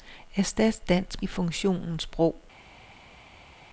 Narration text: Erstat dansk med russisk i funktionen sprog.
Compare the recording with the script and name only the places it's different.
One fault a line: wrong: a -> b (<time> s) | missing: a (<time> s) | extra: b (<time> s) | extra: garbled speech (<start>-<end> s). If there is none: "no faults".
missing: med russisk (1.2 s)